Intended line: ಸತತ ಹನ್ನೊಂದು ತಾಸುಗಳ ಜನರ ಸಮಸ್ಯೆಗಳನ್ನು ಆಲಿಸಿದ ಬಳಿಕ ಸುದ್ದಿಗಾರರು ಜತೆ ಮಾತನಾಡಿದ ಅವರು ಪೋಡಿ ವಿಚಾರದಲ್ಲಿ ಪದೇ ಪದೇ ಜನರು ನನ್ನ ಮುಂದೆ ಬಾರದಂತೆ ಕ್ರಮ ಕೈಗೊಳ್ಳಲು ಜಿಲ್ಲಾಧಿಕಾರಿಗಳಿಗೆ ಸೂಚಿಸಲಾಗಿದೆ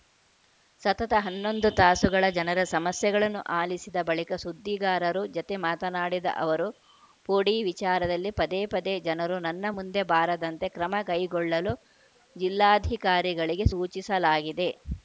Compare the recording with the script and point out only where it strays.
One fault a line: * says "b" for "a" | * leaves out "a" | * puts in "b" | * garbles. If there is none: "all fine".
all fine